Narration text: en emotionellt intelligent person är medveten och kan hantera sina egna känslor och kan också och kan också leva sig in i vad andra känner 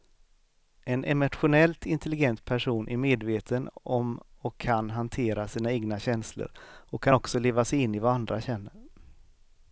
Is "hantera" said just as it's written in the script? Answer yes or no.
yes